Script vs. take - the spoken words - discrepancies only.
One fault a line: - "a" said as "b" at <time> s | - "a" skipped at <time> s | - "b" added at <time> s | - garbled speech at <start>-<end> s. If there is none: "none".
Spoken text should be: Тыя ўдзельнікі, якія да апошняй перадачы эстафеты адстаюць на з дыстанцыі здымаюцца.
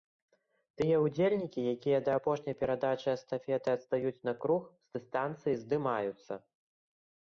- "круг" added at 4.5 s